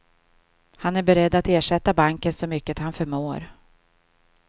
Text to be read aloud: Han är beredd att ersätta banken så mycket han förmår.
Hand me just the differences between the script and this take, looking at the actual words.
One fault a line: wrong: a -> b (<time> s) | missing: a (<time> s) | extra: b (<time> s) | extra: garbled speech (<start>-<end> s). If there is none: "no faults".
no faults